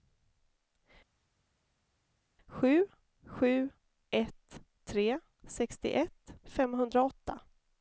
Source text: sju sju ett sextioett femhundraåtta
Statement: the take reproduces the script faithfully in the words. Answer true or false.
false